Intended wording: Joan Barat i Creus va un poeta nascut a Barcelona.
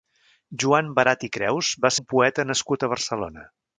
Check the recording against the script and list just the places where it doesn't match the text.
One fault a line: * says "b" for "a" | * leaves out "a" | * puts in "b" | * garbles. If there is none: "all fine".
all fine